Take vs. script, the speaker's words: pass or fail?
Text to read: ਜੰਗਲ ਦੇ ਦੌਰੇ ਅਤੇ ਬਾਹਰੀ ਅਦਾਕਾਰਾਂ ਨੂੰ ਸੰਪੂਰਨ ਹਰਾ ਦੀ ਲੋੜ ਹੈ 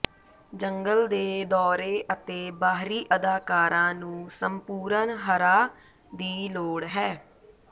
pass